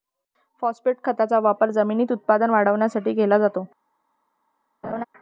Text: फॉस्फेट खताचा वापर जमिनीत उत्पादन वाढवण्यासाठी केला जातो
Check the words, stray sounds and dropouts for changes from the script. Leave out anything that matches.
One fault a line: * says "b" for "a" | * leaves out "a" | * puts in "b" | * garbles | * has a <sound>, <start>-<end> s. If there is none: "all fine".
* has a laugh, 4.8-5.0 s